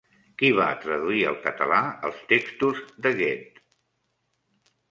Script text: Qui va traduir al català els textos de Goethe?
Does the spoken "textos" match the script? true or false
true